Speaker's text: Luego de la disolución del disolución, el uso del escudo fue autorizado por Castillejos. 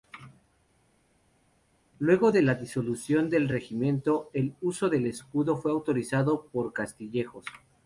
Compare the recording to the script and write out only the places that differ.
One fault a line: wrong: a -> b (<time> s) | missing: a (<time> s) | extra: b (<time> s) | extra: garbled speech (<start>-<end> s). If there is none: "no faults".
wrong: disolución -> regimiento (3.5 s)